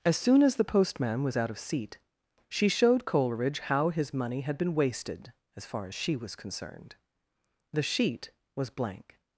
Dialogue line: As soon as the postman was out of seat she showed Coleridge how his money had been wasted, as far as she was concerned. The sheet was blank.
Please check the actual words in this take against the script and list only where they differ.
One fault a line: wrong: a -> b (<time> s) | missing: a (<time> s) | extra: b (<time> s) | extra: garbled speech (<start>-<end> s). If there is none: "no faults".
no faults